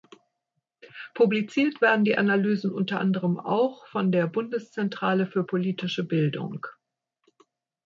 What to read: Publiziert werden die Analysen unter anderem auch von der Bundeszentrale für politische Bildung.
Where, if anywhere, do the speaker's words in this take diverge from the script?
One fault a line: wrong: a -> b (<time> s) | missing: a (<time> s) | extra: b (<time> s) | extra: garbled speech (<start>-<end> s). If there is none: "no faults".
no faults